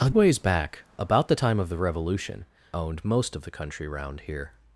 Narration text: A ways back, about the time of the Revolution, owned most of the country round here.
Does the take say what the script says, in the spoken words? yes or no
yes